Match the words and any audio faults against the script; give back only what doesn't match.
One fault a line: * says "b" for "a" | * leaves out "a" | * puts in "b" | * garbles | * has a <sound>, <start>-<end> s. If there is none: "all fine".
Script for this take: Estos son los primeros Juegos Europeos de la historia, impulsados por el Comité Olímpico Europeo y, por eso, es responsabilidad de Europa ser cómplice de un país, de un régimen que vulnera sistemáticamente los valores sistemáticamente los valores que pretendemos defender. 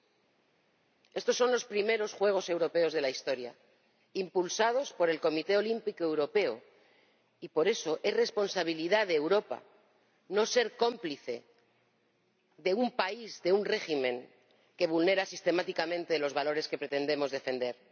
* puts in "no"
* leaves out "sistemáticamente los valores"